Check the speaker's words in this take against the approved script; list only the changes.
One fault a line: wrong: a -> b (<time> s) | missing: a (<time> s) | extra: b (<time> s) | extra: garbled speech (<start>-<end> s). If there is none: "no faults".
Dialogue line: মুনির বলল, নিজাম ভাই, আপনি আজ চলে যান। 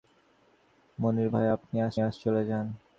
missing: বলল নিজাম (1.3 s)
extra: আজ (2.0 s)